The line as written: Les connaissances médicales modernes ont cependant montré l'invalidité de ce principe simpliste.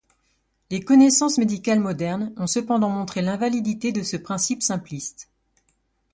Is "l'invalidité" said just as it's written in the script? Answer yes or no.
yes